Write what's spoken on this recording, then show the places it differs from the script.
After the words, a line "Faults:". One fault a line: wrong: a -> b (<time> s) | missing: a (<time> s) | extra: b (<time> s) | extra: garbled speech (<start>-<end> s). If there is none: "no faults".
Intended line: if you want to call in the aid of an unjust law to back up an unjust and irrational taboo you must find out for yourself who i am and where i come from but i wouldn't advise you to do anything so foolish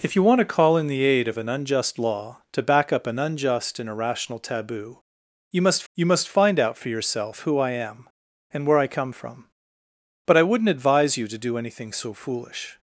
if you want to call in the aid of an unjust law to back up an unjust and irrational taboo you must you must find out for yourself who i am and where i come from but i wouldn't advise you to do anything so foolish
Faults:
extra: you must (5.9 s)